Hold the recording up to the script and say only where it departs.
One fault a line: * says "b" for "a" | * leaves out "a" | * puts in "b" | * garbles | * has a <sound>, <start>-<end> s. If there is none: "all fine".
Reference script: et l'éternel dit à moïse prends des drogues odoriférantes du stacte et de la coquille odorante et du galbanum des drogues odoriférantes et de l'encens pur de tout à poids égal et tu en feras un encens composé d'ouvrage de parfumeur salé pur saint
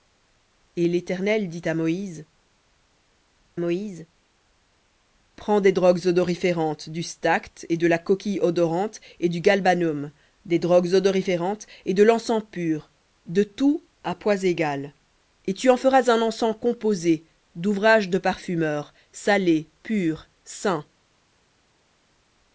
* puts in "moïse"